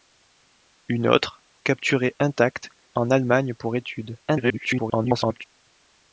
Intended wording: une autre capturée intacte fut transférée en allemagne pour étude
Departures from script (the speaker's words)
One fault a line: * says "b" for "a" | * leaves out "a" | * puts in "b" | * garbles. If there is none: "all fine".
* leaves out "fut transférée"
* garbles